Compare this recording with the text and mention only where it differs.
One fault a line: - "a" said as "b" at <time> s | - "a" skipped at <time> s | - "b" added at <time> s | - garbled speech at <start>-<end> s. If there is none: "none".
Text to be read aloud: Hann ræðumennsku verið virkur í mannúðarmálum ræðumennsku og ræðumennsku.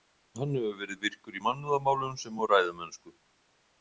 - "ræðumennsku" said as "hefur" at 0.6 s
- "ræðumennsku" said as "sem" at 2.2 s